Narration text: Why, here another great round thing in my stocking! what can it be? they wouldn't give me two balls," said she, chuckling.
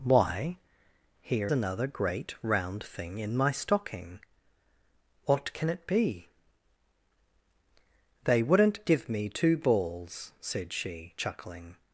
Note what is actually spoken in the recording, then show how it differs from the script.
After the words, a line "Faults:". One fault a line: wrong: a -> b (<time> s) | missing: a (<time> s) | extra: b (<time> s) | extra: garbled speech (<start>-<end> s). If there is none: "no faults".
Why, here another great round thing in my stocking! what can it be? they wouldn't give me two balls," said she, chuckling.
Faults:
no faults